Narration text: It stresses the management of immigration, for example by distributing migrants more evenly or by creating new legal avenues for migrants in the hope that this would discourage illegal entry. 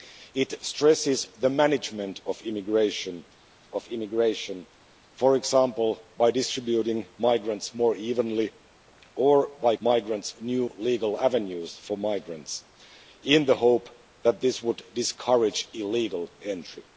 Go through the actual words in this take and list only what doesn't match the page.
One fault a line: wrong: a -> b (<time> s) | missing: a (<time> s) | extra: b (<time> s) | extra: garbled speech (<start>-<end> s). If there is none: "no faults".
extra: of immigration (3.7 s)
wrong: creating -> migrants (9.8 s)